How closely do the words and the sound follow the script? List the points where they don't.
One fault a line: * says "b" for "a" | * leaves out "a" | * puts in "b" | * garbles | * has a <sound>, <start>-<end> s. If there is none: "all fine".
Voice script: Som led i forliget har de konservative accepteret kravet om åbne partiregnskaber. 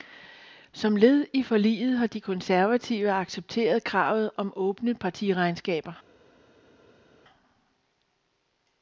all fine